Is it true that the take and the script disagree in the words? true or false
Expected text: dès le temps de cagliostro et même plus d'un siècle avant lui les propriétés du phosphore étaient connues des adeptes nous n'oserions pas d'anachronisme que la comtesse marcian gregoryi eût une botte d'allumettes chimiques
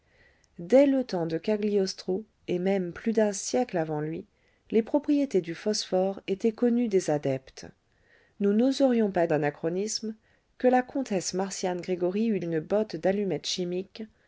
false